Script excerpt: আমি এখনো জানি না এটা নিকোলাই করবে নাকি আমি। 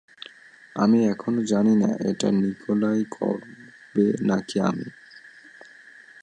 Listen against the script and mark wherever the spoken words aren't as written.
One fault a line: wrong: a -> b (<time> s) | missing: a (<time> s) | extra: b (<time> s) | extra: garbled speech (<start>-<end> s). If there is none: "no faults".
no faults